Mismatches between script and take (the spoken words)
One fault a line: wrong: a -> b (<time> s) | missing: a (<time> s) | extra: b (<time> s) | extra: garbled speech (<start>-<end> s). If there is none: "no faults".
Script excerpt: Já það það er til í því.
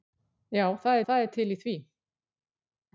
no faults